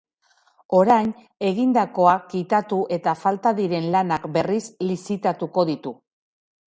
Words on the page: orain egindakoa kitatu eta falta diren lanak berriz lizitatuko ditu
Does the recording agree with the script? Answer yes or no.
yes